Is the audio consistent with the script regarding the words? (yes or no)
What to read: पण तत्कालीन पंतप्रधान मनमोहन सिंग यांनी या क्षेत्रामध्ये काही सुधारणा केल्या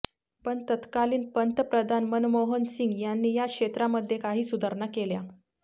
yes